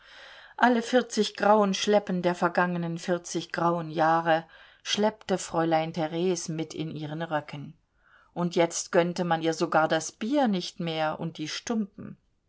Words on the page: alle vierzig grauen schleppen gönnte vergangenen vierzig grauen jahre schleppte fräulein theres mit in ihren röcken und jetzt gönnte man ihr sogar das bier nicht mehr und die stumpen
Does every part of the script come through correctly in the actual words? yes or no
no